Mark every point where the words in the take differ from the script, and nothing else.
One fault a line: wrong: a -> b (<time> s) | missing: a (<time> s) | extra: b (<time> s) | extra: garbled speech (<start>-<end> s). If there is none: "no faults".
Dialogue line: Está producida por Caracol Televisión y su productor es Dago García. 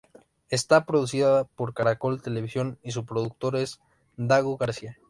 no faults